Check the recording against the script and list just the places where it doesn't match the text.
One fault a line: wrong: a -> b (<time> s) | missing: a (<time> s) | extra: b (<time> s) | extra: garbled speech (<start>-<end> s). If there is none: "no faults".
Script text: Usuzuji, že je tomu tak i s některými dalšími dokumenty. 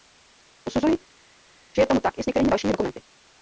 no faults